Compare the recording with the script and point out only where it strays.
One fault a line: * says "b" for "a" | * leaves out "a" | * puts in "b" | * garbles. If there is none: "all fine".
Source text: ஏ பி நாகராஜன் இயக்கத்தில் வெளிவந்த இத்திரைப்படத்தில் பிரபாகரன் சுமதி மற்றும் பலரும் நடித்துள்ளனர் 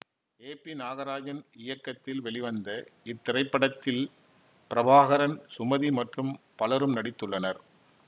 all fine